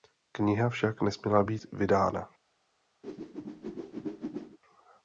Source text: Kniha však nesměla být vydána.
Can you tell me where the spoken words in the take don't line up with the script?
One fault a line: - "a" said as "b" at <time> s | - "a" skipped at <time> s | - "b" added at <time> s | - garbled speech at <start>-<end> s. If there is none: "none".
none